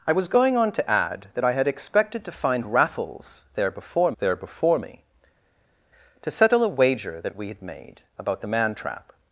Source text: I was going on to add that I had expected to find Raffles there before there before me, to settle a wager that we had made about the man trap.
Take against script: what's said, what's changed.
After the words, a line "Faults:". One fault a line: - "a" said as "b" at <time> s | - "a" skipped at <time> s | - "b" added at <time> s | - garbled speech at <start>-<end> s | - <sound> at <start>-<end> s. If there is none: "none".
I was going on to add that I had expected to find Raffles there before there before me, to settle a wager that we had made about the man trap.
Faults:
none